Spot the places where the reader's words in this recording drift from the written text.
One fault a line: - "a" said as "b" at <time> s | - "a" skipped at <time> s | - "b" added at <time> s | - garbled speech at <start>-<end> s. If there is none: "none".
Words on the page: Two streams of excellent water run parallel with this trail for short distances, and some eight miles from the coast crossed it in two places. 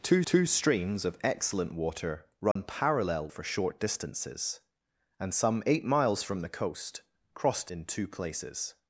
- "two" added at 0.2 s
- "with this trail" skipped at 3.3 s
- "it" skipped at 7.7 s